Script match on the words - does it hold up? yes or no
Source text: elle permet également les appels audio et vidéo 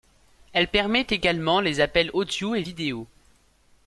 yes